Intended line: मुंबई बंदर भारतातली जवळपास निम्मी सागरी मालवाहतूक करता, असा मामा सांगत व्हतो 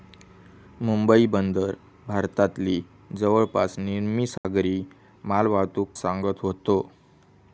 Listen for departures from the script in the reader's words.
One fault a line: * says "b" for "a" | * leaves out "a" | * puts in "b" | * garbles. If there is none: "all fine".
* leaves out "करता असा मामा"